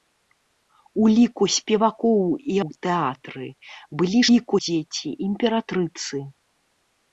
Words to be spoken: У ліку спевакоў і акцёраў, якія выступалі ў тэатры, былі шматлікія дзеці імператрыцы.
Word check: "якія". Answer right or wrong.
wrong